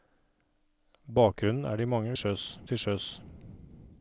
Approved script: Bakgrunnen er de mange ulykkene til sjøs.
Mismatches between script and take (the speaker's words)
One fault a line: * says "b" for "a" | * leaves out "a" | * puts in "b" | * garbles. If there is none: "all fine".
* says "sjøs" for "ulykkene"